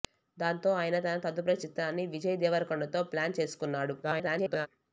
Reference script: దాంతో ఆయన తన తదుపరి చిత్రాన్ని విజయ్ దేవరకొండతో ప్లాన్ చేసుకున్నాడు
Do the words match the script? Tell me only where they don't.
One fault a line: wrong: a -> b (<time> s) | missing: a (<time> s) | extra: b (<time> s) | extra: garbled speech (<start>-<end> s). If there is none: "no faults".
extra: garbled speech (4.0-4.7 s)